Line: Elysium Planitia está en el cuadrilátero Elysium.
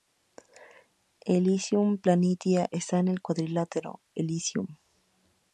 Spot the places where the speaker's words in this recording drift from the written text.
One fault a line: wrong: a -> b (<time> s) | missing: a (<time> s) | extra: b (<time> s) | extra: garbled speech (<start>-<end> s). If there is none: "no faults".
no faults